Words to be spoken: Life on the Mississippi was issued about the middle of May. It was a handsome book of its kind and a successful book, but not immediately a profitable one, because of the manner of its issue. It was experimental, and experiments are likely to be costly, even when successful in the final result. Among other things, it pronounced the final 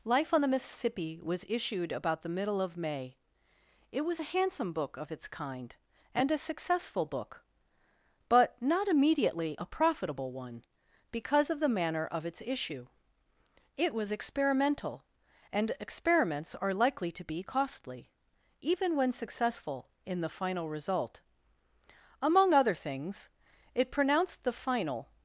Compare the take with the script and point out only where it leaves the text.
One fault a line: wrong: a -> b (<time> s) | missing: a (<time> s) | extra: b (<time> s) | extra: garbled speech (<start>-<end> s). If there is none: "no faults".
no faults